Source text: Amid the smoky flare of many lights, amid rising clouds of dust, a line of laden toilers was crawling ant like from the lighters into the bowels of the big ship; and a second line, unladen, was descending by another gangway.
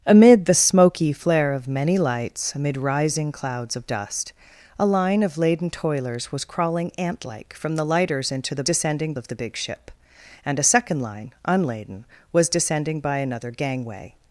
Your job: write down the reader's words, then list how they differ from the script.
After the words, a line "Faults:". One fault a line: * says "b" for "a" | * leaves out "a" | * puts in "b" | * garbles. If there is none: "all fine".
Amid the smoky flare of many lights, amid rising clouds of dust, a line of laden toilers was crawling ant like from the lighters into the descending of the big ship; and a second line, unladen, was descending by another gangway.
Faults:
* says "descending" for "bowels"